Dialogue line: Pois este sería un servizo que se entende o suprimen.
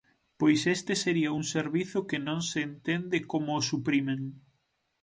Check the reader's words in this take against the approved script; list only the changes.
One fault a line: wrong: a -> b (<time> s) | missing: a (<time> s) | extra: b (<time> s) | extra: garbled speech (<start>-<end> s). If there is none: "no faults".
extra: non (2.3 s)
extra: como (3.3 s)